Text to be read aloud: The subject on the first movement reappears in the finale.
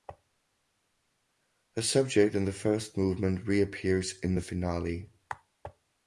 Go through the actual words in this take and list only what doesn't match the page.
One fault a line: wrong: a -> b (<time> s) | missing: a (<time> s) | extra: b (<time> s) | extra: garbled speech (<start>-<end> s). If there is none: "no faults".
wrong: on -> in (2.3 s)